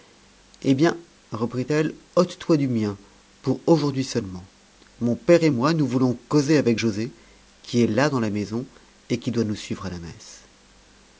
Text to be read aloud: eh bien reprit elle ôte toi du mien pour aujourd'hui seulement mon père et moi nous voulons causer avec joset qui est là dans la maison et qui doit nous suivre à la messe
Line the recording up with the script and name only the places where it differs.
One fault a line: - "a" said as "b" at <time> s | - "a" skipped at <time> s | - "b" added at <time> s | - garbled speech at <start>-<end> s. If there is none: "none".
none